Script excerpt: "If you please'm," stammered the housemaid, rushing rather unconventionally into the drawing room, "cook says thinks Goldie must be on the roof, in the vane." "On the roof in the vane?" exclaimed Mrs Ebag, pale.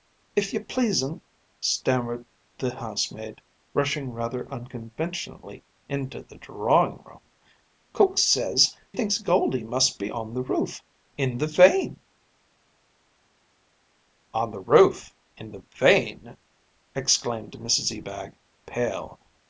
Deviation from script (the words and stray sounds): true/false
false